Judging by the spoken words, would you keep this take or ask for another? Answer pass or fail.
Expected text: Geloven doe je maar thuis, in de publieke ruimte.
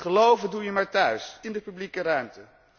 pass